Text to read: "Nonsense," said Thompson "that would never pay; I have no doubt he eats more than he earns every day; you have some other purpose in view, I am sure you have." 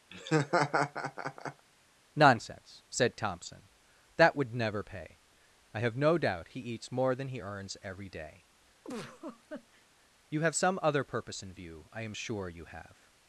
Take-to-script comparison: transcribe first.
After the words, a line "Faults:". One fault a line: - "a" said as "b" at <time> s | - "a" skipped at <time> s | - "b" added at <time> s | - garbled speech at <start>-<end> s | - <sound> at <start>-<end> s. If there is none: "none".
"Nonsense," said Thompson "that would never pay; I have no doubt he eats more than he earns every day; you have some other purpose in view, I am sure you have."
Faults:
- laugh at 0.1-1.7 s
- laugh at 8.8-9.9 s